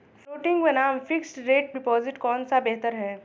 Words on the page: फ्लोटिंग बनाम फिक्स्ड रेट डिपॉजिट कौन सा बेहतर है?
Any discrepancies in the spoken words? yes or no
no